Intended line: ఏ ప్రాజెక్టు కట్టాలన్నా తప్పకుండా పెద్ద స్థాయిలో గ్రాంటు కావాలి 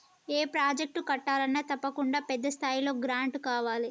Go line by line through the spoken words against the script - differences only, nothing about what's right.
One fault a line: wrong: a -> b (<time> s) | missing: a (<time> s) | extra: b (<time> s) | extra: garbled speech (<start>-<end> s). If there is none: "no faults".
no faults